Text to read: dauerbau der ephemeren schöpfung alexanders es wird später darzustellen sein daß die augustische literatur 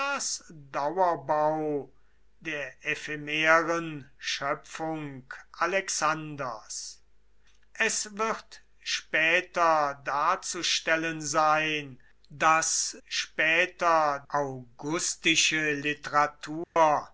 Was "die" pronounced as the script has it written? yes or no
no